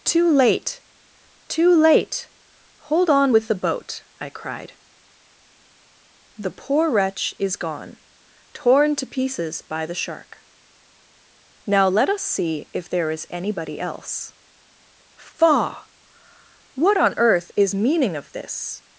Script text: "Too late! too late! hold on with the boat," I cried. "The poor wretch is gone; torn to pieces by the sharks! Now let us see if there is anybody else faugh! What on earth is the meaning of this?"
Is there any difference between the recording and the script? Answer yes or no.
yes